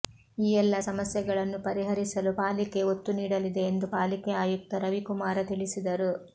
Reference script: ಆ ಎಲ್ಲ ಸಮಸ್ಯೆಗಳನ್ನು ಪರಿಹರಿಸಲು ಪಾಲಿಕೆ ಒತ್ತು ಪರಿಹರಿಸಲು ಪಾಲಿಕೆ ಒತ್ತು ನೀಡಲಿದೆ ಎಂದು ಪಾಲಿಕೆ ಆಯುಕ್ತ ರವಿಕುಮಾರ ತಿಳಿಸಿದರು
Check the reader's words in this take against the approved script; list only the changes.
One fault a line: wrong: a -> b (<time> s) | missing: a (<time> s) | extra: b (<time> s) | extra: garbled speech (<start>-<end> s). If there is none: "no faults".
wrong: ಆ -> ಈ (0.4 s)
missing: ಪರಿಹರಿಸಲು ಪಾಲಿಕೆ ಒತ್ತು (3.1 s)